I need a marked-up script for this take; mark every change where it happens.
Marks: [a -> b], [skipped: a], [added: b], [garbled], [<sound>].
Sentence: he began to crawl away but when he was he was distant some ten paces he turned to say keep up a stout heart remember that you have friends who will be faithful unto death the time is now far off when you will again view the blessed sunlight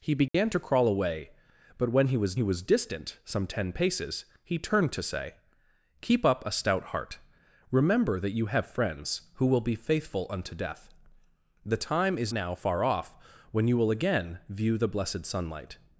he began [dropout] to crawl away but when he was he was distant some ten paces he turned to say keep up a stout heart remember that you have friends who will be faithful unto death the time is now far off when you will again view the blessed sunlight